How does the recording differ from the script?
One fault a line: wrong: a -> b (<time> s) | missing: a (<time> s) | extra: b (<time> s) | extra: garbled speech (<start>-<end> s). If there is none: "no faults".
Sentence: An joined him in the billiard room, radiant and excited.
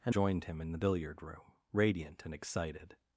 no faults